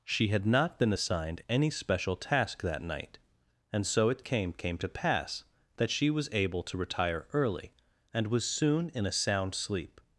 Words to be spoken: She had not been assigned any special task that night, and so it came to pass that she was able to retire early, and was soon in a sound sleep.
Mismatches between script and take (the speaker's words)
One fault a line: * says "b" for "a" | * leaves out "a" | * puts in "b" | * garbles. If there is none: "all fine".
* puts in "came"